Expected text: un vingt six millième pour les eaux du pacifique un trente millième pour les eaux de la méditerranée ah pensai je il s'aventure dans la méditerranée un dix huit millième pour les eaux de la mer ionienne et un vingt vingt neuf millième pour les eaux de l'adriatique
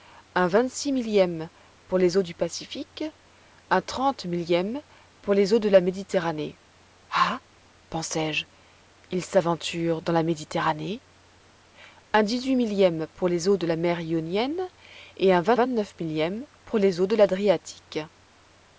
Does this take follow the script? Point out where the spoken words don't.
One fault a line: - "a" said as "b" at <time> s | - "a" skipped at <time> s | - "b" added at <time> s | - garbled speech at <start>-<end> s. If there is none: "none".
none